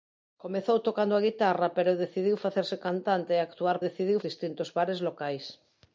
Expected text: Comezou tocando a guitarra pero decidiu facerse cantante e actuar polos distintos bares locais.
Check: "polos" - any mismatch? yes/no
yes